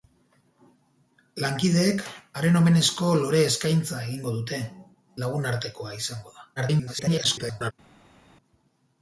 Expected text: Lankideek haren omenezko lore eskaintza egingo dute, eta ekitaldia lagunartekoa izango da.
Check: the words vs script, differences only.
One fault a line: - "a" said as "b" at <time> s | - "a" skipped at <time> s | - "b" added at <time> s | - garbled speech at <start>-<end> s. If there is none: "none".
- "eta ekitaldia" skipped at 4.6 s
- garbled speech at 6.6-7.7 s